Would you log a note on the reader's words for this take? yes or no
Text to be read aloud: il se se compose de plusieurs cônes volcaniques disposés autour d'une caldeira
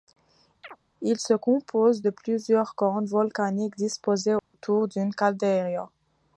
yes